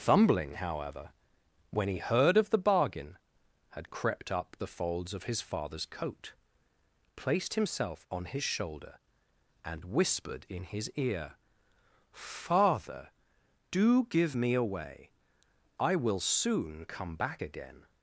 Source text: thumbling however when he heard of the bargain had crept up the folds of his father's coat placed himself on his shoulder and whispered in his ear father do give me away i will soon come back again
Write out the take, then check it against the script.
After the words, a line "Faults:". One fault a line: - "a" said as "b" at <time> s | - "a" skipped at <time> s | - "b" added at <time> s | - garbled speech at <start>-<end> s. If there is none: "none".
thumbling however when he heard of the bargain had crept up the folds of his father's coat placed himself on his shoulder and whispered in his ear father do give me away i will soon come back again
Faults:
none